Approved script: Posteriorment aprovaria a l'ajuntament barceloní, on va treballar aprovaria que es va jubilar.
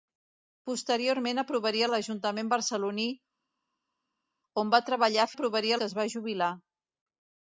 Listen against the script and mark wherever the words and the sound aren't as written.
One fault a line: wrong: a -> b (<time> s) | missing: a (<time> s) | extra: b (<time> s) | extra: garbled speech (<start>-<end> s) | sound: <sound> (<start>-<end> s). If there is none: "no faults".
no faults